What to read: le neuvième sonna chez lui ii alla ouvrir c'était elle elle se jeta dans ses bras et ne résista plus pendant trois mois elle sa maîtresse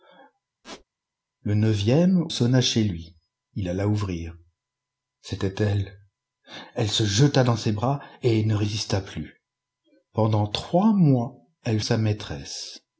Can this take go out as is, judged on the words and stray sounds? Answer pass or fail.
fail